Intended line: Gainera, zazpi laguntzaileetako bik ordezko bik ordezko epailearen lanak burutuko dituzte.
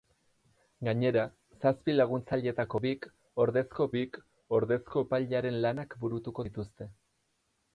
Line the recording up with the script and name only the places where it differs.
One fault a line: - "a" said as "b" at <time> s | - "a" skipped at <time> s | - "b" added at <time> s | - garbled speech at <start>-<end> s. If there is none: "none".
none